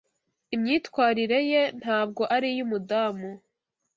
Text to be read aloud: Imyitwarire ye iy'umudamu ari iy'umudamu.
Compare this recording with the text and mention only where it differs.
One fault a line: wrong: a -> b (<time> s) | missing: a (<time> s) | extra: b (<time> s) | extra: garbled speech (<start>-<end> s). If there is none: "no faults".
wrong: iy'umudamu -> ntabwo (1.8 s)